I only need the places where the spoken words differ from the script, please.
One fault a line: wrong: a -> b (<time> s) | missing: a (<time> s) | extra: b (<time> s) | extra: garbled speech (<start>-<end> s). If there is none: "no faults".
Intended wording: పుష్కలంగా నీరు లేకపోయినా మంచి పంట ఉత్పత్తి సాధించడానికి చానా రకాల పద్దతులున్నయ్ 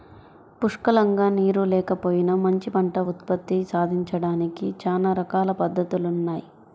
no faults